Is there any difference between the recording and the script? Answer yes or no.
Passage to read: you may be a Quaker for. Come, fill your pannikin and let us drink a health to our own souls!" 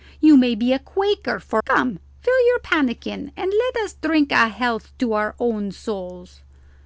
no